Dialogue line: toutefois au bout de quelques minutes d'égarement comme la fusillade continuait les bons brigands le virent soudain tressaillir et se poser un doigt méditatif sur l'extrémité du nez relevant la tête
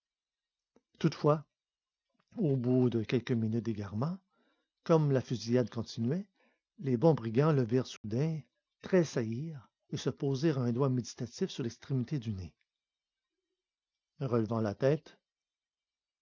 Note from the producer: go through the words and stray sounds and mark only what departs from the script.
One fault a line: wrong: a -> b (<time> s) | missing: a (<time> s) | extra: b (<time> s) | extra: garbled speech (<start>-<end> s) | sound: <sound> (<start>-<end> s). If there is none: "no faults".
sound: dropout (8.0-8.0 s)